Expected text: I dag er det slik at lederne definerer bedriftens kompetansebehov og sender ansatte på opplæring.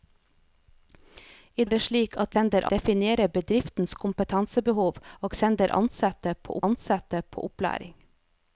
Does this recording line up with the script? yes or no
no